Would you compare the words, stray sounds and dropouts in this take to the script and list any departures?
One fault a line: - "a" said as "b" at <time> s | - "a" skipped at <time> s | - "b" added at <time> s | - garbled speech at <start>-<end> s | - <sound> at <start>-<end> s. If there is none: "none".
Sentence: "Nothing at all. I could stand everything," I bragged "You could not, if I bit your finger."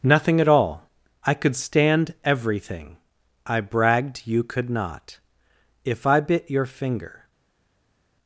none